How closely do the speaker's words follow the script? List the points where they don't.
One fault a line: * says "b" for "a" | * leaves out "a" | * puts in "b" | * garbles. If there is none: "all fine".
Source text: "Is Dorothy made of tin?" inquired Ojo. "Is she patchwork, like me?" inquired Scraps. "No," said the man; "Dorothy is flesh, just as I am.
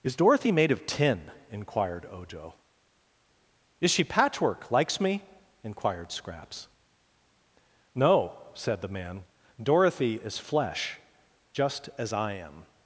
* says "likes" for "like"